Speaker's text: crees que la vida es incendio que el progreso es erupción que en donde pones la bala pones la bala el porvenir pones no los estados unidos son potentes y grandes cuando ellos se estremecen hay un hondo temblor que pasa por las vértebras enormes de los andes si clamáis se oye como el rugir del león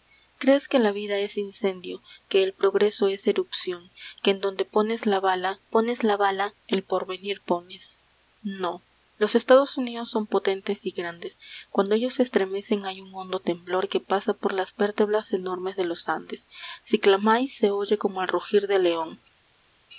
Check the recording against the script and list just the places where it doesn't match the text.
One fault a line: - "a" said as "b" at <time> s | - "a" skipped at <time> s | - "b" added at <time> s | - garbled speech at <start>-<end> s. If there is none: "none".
none